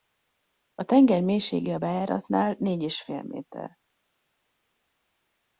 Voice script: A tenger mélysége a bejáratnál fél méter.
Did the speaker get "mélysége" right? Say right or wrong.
right